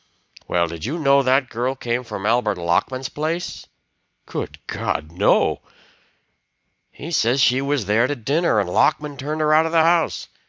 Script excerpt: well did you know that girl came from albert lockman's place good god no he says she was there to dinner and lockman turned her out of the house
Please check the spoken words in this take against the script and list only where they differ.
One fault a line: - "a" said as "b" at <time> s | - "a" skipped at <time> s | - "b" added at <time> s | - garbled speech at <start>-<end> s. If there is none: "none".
none